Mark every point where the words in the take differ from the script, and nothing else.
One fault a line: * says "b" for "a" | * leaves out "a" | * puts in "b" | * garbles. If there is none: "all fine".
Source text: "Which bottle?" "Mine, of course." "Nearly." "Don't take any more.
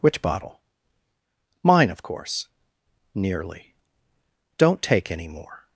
all fine